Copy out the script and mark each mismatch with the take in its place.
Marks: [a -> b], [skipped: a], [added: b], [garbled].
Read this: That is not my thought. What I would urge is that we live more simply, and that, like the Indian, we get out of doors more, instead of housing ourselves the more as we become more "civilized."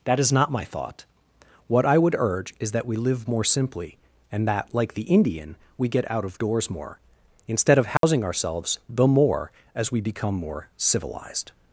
That is not my thought. What I would urge is that we live more simply, and that, like the Indian, we get out of doors more, instead of housing ourselves the more as we become more "civilized."